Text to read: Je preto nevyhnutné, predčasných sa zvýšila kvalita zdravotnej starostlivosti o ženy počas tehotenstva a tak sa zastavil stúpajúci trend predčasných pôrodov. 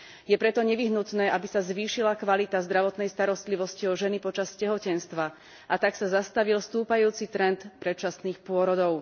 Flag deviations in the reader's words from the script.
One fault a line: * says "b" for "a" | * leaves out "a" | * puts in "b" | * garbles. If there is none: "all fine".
* says "aby" for "predčasných"